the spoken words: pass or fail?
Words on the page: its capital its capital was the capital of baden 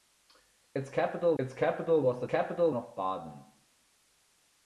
pass